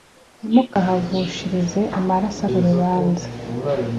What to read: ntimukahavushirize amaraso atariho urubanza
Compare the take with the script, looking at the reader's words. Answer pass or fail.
fail